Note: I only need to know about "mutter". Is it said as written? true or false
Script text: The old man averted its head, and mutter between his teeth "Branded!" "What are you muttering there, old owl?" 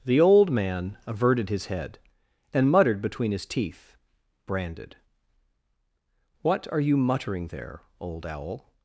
false